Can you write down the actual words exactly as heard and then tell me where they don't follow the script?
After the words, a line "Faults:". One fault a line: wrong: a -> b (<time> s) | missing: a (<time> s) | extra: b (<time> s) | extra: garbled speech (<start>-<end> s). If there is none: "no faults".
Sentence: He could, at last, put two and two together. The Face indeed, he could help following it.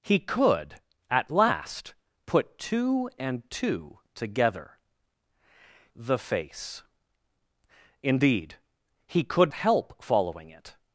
He could, at last, put two and two together. The Face indeed, he could help following it.
Faults:
no faults